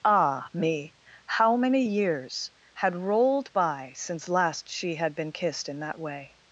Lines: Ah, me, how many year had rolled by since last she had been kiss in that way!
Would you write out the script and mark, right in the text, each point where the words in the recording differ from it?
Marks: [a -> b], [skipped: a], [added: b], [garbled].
Ah, me, how many [year -> years] had rolled by since last she had been [kiss -> kissed] in that way!